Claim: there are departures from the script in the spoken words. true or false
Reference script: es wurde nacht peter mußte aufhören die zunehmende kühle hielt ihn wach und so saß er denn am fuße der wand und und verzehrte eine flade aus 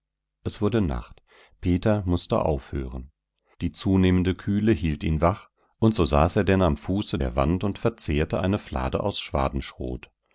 true